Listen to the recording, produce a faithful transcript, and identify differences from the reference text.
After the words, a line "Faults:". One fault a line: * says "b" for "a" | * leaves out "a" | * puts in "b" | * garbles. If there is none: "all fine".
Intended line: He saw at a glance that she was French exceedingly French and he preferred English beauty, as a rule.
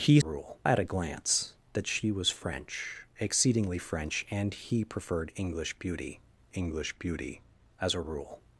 He rule at a glance that she was French exceedingly French and he preferred English beauty English beauty, as a rule.
Faults:
* says "rule" for "saw"
* puts in "English beauty"